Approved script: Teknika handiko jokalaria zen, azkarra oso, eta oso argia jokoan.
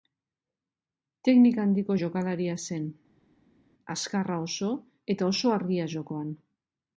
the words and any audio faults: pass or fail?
pass